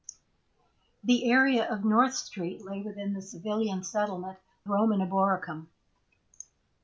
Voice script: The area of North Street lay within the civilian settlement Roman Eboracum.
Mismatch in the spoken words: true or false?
false